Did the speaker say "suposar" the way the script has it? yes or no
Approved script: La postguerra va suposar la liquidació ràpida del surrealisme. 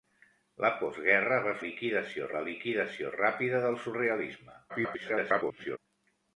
no